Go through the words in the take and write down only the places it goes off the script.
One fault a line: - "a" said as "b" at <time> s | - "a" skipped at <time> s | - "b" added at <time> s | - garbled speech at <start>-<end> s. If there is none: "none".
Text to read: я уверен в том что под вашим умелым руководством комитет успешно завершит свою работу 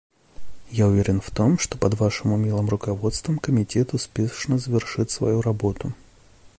none